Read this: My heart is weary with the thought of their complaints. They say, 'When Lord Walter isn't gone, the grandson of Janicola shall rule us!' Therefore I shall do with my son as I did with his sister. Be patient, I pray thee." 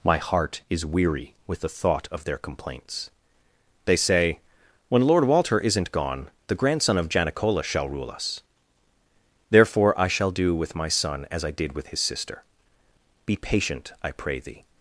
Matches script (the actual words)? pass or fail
pass